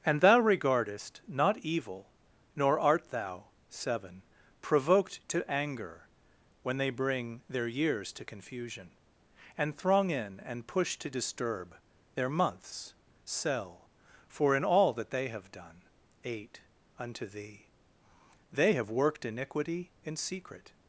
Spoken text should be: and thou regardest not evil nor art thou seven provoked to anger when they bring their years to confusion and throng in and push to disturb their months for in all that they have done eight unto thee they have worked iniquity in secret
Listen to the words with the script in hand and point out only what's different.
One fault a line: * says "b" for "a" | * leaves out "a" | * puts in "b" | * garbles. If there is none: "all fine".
* puts in "sell"